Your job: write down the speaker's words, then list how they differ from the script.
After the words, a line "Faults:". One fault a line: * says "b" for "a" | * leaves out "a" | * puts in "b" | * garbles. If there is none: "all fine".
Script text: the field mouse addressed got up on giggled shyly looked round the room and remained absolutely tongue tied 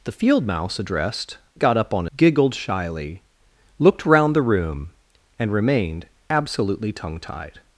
the field mouse addressed got up on giggled shyly looked round the room and remained absolutely tongue tied
Faults:
all fine